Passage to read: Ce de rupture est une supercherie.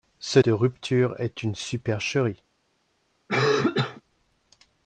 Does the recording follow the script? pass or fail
pass